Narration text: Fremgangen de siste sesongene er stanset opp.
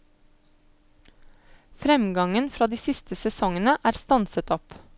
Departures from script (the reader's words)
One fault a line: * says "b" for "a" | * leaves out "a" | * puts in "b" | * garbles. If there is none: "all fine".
* puts in "fra"